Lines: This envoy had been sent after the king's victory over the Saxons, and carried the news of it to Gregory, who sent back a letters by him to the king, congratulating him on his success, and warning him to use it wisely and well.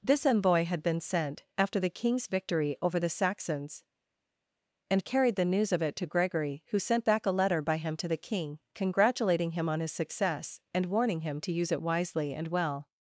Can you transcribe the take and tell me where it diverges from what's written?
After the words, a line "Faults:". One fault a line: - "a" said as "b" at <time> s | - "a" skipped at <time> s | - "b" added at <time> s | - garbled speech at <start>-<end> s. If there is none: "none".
This envoy had been sent after the king's victory over the Saxons, and carried the news of it to Gregory, who sent back a letter by him to the king, congratulating him on his success, and warning him to use it wisely and well.
Faults:
- "letters" said as "letter" at 7.3 s